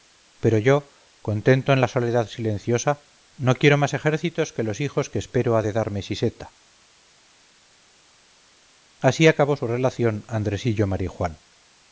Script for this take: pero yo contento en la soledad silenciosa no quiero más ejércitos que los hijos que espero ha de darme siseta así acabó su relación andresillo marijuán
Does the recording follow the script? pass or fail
pass